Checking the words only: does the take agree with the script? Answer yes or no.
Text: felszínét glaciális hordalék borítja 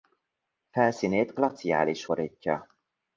no